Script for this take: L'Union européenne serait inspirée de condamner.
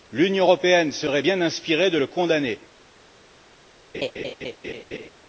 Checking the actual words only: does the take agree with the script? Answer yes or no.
no